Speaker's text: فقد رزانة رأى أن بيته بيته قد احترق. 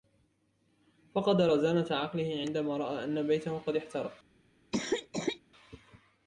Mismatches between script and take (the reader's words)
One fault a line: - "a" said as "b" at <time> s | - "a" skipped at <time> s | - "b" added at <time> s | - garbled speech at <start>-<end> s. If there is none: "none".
- "عقله عندما" added at 1.9 s
- "بيته" skipped at 3.6 s